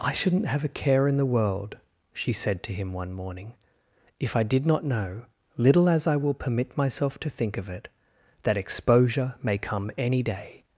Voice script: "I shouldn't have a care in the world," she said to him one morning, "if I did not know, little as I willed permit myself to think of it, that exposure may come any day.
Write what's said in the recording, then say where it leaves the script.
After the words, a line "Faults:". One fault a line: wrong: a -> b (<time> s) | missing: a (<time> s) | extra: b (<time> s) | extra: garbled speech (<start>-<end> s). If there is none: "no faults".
"I shouldn't have a care in the world," she said to him one morning, "if I did not know, little as I will permit myself to think of it, that exposure may come any day.
Faults:
wrong: willed -> will (6.1 s)